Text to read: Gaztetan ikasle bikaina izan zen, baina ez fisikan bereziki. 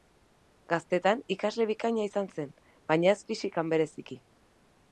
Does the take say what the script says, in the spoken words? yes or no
yes